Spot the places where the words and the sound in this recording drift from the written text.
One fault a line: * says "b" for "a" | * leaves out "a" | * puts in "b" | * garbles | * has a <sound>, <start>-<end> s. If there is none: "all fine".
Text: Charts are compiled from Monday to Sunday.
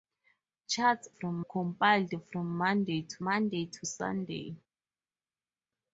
* says "from" for "are"
* puts in "Monday to"